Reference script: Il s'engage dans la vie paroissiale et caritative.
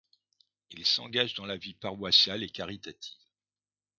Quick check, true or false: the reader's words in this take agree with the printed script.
true